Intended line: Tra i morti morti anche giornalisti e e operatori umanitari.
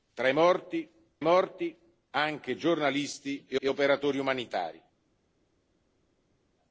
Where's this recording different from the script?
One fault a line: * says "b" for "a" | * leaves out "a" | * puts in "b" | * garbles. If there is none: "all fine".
all fine